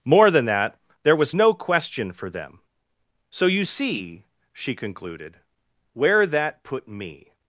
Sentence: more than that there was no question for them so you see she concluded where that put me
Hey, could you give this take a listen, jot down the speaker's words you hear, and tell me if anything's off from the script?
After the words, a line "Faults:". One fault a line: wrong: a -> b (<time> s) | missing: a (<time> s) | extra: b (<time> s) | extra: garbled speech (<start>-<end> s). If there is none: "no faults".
more than that there was no question for them so you see she concluded where that put me
Faults:
no faults